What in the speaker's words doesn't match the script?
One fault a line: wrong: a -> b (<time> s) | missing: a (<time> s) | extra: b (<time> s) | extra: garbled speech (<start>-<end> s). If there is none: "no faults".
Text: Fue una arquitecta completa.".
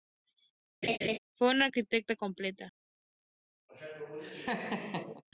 no faults